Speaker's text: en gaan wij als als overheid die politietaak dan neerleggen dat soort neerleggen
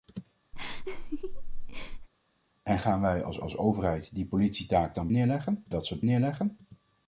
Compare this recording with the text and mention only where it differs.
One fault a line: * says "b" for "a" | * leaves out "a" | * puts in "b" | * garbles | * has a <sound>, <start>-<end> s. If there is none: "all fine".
* has a laugh, 0.5-2.1 s